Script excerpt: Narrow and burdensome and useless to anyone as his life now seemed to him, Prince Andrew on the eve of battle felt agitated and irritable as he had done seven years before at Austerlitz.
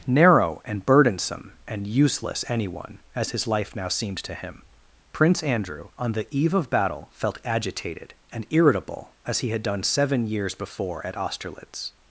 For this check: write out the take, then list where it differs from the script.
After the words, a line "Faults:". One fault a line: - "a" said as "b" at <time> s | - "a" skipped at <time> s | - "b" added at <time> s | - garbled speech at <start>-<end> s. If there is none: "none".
Narrow and burdensome and useless anyone as his life now seemed to him, Prince Andrew on the eve of battle felt agitated and irritable as he had done seven years before at Austerlitz.
Faults:
- "to" skipped at 2.4 s